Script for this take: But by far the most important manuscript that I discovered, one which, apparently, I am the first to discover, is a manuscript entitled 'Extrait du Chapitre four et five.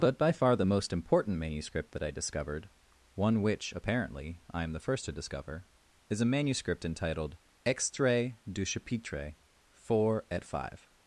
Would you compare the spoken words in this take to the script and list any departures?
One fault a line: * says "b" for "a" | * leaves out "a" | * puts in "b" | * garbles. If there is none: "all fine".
all fine